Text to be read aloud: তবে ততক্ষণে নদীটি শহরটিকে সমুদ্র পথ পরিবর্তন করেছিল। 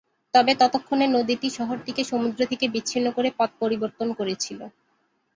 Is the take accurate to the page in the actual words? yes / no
no